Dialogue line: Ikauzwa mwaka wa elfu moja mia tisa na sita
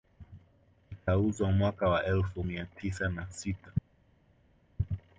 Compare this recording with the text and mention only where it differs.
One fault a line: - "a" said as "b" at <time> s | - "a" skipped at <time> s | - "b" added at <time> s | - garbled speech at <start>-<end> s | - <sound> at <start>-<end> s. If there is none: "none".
- "moja" skipped at 2.4 s